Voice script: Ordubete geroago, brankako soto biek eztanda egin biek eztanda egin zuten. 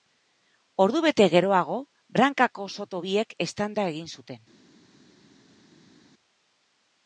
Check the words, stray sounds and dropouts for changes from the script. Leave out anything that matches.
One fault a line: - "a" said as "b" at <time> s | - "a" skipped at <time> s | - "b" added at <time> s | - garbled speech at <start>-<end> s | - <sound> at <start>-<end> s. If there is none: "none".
- "biek eztanda egin" skipped at 4.1 s